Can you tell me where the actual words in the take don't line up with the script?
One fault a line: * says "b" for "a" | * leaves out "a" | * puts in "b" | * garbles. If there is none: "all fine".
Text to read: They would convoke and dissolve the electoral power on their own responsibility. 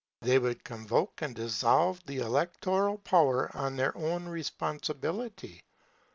all fine